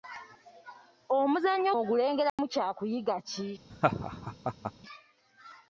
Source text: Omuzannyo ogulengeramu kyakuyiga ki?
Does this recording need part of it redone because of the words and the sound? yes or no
yes